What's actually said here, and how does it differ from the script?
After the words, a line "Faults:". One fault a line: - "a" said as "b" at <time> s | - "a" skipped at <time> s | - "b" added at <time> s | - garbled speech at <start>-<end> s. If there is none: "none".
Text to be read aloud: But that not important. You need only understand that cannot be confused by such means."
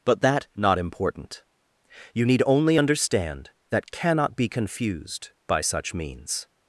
But that not important. You need only understand that cannot be confused by such means."
Faults:
none